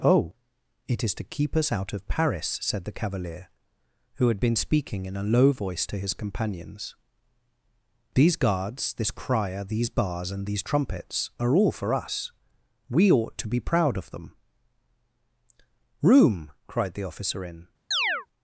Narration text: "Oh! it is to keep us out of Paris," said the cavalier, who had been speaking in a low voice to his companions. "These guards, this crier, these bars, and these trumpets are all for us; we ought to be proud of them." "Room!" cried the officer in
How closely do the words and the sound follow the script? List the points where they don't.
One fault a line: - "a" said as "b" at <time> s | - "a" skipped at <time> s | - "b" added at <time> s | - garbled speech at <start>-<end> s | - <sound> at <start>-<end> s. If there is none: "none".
- chirp at 17.9-18.3 s